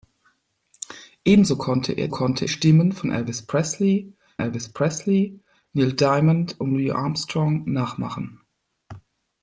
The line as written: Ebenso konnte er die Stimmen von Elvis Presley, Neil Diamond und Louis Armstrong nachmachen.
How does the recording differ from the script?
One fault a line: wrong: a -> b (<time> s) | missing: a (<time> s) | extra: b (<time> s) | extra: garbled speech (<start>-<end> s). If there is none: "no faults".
wrong: die -> konnte (2.1 s)
extra: Elvis Presley (4.4 s)